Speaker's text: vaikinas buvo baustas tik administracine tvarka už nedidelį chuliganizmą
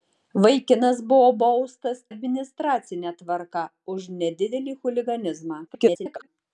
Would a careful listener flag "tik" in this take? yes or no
yes